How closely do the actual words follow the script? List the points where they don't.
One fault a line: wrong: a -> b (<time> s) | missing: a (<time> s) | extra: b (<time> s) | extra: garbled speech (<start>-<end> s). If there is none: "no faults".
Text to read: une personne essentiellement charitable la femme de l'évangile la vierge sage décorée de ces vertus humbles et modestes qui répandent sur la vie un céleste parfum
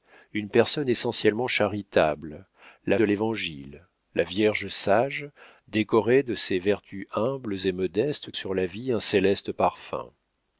missing: femme (3.0 s)
missing: qui répandent (8.3 s)